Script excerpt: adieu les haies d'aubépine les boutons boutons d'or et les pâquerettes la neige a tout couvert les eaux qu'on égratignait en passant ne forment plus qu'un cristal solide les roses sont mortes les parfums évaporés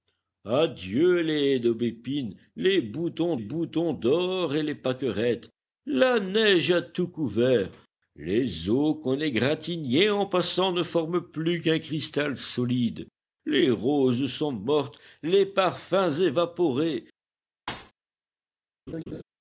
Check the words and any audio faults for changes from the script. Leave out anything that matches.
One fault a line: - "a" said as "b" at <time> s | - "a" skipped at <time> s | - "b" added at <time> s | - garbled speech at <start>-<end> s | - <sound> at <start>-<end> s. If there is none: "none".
- thud at 17.7-17.9 s
- laugh at 18.9-19.2 s